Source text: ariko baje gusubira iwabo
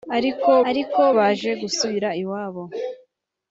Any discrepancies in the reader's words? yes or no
yes